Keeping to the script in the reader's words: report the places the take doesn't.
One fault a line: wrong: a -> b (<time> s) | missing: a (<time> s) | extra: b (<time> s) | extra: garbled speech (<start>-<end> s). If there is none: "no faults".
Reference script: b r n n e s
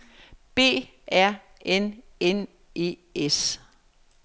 no faults